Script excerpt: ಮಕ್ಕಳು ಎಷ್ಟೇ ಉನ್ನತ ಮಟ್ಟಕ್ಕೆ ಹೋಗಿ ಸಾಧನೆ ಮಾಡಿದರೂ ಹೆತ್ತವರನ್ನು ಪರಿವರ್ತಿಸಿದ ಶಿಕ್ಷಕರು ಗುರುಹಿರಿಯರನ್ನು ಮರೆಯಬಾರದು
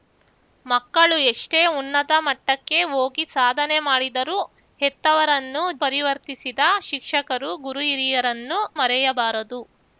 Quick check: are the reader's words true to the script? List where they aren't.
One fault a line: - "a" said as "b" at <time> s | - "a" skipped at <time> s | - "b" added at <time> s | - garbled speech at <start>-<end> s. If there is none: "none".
none